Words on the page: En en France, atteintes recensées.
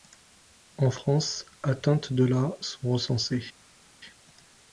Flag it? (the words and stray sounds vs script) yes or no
yes